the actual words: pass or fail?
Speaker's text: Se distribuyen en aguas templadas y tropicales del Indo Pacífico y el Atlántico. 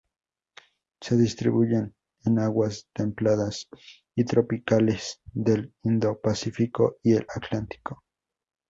pass